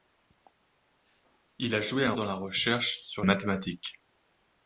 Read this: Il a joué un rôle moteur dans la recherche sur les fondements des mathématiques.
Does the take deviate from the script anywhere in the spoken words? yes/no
yes